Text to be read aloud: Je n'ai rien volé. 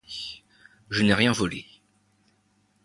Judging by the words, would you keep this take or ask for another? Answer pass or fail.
pass